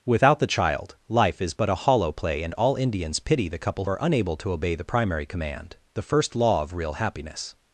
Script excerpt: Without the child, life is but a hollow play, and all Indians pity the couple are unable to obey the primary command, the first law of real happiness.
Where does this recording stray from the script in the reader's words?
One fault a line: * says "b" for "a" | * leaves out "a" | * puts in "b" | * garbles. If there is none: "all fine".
all fine